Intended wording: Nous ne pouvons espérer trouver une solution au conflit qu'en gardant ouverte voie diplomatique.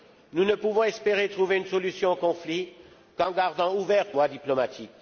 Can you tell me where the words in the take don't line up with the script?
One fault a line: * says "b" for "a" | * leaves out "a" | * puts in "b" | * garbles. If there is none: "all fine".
all fine